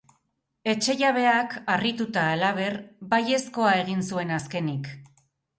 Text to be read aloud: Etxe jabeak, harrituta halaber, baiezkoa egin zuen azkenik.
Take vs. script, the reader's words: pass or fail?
pass